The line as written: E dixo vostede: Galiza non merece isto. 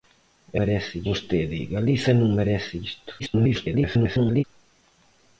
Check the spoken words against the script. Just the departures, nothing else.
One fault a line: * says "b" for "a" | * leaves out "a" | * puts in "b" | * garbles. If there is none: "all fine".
* says "merece" for "dixo"
* garbles